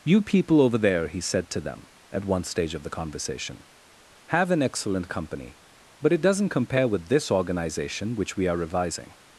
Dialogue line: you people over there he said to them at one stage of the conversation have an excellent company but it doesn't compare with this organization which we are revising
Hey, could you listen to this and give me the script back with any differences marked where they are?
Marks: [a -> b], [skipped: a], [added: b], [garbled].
you people over there he said to them at one stage of the conversation have an excellent company but it doesn't compare with this organization which we are revising